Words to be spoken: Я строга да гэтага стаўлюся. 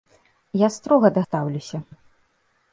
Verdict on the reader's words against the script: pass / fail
fail